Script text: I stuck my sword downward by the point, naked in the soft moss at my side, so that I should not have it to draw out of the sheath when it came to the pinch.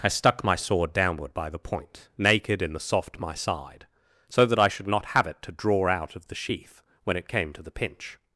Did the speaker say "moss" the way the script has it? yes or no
no